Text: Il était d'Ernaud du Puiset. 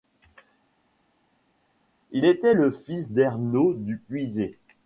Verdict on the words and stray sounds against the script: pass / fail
fail